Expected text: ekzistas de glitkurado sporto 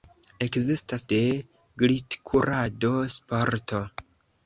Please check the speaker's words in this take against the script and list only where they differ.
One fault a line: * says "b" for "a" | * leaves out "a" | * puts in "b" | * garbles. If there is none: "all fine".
all fine